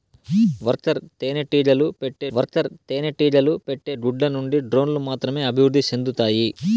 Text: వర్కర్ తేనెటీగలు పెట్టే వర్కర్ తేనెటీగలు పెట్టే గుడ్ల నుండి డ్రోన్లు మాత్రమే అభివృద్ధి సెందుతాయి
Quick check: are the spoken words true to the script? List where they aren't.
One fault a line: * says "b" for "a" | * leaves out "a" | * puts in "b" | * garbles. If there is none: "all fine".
all fine